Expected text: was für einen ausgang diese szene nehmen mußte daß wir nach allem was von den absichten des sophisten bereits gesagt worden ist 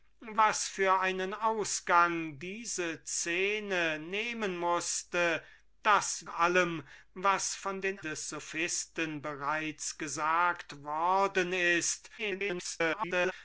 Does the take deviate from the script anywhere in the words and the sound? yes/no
yes